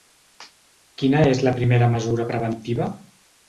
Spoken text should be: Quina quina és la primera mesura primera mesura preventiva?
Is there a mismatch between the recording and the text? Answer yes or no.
yes